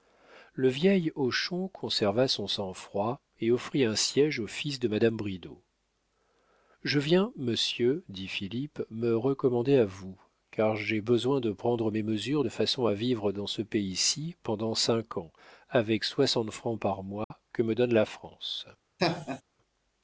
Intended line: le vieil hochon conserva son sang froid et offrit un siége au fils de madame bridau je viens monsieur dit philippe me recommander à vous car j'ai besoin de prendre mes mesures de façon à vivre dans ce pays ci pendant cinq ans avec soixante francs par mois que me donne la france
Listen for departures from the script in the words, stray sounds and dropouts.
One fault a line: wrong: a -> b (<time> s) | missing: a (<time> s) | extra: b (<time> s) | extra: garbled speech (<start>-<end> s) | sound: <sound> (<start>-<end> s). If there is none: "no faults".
sound: dropout (17.2-17.3 s)
sound: laugh (19.0-19.4 s)